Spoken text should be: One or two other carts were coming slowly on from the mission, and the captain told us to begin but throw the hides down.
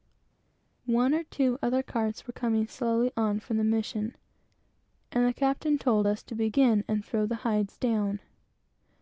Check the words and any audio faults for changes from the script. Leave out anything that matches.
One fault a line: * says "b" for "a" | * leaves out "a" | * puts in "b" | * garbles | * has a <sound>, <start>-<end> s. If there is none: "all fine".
* says "and" for "but"